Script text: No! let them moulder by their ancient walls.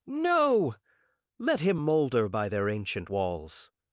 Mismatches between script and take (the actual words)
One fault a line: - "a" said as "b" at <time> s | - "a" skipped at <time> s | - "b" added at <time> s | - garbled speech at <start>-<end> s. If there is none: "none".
- "them" said as "him" at 1.6 s